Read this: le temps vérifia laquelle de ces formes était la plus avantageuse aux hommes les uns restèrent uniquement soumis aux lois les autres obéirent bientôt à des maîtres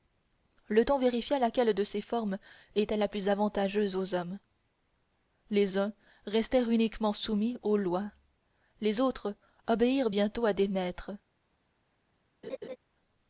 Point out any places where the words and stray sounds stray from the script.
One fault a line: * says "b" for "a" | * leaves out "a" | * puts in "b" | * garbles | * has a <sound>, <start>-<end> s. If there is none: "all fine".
* has a laugh, 12.4-12.8 s